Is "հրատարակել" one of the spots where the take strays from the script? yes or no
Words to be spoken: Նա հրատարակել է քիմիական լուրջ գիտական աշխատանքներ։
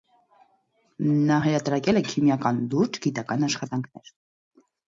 no